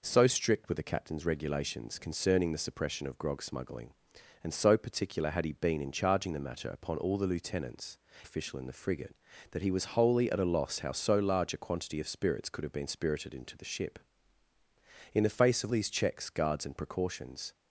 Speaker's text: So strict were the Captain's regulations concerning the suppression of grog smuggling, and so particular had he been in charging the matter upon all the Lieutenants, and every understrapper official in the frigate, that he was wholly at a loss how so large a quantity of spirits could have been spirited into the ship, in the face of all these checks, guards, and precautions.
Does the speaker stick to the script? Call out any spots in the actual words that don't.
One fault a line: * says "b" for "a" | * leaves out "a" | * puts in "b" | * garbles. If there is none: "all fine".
* leaves out "and every understrapper"
* leaves out "all"